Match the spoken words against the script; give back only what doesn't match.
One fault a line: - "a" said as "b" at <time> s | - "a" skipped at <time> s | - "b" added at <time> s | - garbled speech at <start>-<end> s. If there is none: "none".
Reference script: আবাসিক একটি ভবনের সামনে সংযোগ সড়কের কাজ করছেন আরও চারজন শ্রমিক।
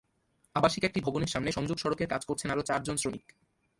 none